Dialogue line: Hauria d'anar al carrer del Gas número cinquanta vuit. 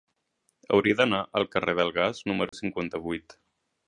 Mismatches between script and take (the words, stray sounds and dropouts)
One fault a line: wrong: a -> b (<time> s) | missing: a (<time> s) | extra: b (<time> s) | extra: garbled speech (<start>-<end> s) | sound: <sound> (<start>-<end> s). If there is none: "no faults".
sound: dropout (2.5-2.5 s)